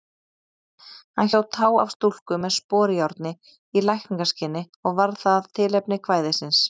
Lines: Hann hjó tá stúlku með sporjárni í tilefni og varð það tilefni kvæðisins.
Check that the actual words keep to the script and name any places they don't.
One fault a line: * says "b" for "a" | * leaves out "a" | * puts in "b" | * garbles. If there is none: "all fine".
* puts in "af"
* says "lækningaskyni" for "tilefni"